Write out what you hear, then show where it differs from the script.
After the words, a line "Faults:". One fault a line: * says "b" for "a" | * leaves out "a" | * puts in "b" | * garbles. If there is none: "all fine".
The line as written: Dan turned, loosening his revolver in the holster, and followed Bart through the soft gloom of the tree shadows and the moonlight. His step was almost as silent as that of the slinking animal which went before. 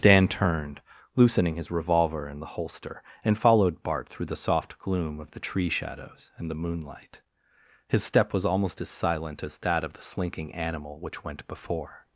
Dan turned, loosening his revolver in the holster, and followed Bart through the soft gloom of the tree shadows and the moonlight. His step was almost as silent as that of the slinking animal which went before.
Faults:
all fine